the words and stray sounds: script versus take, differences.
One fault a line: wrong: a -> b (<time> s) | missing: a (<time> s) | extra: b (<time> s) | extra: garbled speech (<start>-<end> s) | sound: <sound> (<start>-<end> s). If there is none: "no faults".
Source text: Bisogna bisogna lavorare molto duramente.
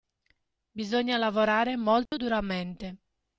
missing: bisogna (1.2 s)
sound: dropout (2.1-2.1 s)